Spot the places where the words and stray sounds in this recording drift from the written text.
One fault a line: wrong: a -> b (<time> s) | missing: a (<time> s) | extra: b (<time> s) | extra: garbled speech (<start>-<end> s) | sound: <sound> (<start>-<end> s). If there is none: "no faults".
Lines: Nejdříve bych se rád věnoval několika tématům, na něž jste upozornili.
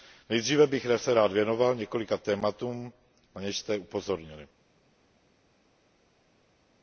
no faults